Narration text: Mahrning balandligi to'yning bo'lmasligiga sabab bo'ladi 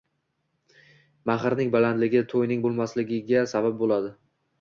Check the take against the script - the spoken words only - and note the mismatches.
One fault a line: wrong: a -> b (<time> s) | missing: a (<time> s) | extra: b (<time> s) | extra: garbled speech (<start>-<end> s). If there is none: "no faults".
no faults